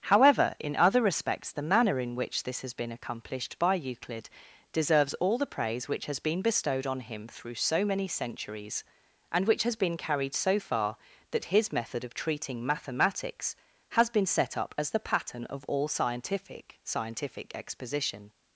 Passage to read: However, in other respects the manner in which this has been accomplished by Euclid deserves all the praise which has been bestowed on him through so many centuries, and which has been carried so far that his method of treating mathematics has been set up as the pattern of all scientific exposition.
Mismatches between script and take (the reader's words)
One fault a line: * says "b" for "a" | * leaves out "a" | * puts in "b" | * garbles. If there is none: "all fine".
* puts in "scientific"